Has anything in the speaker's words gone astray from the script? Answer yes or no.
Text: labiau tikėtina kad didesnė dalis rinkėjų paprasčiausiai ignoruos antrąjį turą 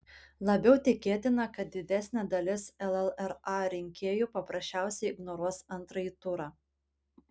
yes